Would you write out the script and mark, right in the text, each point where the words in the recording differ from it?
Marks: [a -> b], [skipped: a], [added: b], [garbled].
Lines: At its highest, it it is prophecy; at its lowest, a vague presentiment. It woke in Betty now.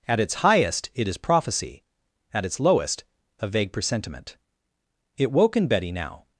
At its highest, it [skipped: it] is prophecy; at its lowest, a vague presentiment. It woke in Betty now.